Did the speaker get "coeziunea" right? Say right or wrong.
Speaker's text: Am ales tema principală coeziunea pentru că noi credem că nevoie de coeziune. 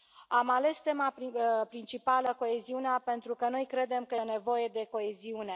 right